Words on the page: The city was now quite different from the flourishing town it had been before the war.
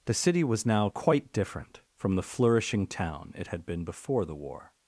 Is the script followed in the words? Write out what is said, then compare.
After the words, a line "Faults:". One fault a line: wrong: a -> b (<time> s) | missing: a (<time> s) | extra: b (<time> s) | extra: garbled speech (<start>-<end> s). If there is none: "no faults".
The city was now quite different from the flourishing town it had been before the war.
Faults:
no faults